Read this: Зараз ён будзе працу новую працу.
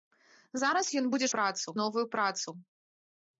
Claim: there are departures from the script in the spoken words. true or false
false